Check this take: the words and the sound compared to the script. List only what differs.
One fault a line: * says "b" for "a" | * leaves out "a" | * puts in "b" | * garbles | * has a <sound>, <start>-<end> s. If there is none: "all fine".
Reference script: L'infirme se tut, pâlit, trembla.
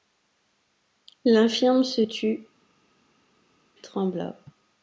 * leaves out "pâlit"